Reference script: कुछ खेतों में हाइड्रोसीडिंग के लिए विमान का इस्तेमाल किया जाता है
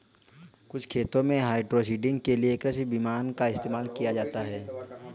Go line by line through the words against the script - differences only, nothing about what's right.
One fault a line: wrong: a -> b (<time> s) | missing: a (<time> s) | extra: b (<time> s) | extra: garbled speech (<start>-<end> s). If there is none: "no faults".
extra: कृषि (2.6 s)